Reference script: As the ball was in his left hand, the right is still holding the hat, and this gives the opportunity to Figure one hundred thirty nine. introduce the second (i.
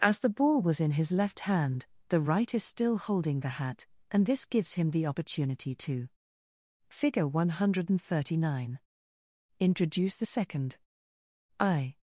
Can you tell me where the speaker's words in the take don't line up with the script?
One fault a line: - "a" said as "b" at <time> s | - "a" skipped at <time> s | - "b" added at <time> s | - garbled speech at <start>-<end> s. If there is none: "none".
- "him" added at 4.7 s